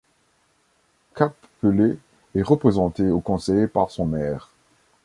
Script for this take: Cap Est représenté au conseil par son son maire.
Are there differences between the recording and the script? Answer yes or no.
yes